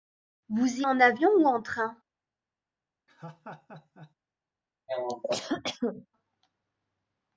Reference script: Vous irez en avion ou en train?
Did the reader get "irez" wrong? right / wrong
wrong